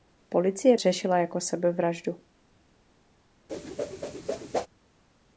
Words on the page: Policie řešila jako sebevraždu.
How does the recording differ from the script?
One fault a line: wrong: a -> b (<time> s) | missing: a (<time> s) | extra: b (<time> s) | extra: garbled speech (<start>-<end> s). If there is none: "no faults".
no faults